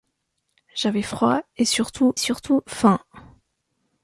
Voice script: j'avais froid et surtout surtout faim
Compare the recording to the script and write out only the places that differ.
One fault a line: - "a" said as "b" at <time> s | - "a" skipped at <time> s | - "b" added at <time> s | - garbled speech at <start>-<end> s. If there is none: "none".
none